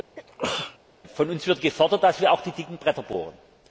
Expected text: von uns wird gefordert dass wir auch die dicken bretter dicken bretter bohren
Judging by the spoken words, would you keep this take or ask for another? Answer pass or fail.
fail